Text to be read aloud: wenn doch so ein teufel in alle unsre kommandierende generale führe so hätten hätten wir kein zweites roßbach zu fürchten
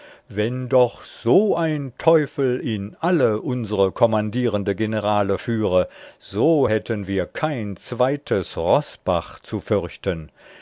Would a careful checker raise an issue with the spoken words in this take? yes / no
yes